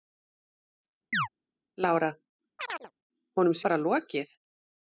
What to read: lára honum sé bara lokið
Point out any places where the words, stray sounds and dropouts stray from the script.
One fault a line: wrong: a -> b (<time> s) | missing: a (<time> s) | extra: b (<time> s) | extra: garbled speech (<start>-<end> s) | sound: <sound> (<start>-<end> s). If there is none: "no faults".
sound: chirp (1.1-1.3 s)
sound: chirp (2.6-2.9 s)
missing: sé (3.6 s)